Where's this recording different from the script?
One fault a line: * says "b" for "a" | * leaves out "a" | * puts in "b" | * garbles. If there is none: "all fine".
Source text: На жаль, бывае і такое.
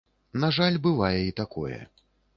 all fine